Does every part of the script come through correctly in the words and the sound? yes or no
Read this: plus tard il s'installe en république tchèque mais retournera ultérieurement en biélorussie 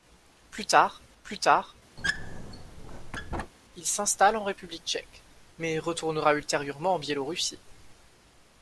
no